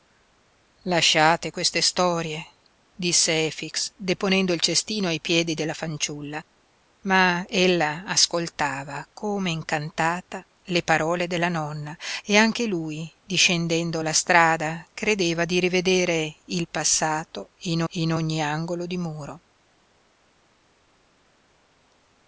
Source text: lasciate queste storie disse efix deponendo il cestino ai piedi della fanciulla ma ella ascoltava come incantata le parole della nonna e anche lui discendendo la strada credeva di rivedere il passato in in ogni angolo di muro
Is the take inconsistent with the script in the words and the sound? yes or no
no